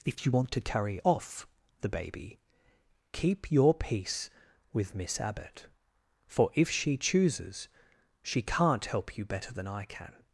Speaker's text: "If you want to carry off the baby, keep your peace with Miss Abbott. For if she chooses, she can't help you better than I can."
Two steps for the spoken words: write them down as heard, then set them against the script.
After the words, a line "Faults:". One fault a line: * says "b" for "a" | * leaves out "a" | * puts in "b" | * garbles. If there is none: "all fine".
"If you want to carry off the baby, keep your peace with Miss Abbott. For if she chooses, she can't help you better than I can."
Faults:
all fine